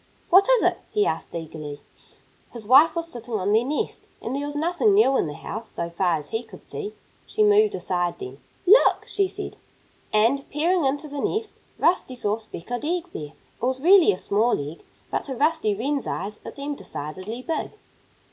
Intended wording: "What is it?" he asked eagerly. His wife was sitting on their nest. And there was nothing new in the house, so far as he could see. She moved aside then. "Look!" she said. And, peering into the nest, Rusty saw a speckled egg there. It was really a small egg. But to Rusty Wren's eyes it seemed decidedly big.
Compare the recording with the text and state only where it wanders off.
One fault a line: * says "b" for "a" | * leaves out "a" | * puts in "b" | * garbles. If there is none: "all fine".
all fine